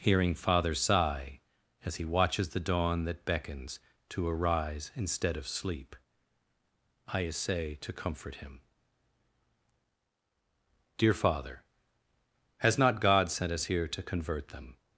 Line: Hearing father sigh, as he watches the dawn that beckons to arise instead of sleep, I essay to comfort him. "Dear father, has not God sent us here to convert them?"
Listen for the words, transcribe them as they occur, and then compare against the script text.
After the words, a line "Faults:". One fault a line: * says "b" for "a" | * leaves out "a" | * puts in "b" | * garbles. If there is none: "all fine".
Hearing father sigh, as he watches the dawn that beckons to arise instead of sleep, I essay to comfort him. "Dear father, has not God sent us here to convert them?"
Faults:
all fine